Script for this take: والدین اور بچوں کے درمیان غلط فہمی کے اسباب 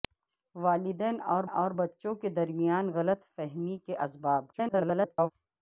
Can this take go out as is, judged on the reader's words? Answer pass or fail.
fail